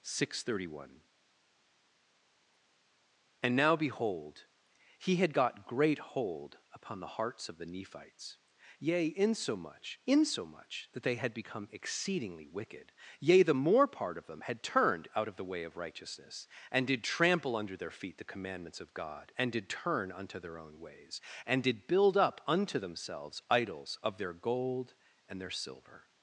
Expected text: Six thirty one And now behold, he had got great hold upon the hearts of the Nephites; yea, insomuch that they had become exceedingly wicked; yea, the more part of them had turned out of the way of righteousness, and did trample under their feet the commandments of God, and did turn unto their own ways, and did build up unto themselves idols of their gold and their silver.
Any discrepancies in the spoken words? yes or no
yes